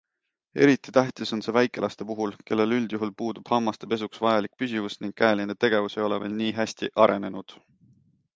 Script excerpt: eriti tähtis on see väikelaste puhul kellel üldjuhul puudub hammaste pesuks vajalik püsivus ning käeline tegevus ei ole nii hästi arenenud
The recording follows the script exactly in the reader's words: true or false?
false